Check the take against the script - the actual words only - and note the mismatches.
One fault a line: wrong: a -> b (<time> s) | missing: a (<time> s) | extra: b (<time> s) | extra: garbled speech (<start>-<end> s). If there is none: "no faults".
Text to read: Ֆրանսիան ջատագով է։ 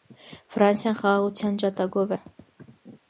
extra: խաղաղության (1.0 s)